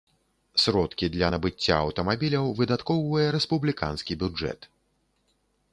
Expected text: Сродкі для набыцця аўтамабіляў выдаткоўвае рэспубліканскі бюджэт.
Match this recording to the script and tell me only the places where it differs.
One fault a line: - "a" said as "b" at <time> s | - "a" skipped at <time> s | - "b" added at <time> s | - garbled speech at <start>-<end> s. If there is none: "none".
none